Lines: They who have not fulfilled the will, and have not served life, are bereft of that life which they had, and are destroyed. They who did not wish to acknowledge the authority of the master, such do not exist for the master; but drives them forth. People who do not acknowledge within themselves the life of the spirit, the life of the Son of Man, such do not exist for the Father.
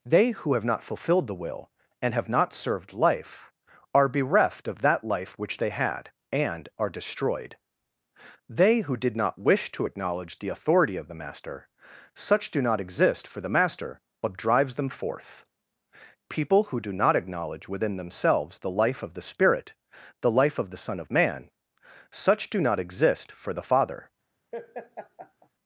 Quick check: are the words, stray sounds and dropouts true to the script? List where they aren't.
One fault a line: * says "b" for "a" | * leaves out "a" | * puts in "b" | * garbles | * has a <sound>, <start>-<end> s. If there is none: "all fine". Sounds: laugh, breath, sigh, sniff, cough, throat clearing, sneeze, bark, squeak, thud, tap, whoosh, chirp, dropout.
* has a laugh, 24.5-25.5 s